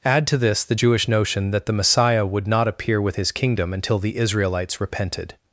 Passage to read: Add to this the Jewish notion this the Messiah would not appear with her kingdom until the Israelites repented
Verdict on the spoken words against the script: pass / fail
fail